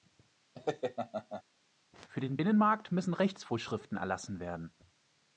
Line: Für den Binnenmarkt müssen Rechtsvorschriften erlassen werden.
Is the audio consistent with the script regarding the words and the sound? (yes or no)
no